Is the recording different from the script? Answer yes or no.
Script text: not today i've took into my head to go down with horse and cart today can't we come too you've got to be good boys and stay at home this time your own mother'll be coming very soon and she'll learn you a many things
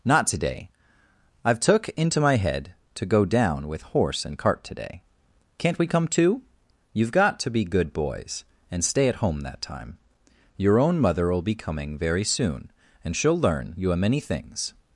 yes